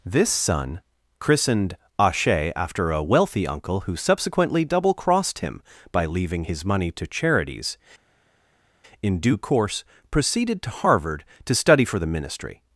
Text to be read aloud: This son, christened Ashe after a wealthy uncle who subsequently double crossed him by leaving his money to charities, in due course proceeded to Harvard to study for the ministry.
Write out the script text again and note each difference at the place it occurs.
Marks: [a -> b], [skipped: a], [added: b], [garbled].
This son, christened Ashe after a wealthy uncle who subsequently double crossed him by leaving his money to charities, in due course proceeded to Harvard to study for the ministry.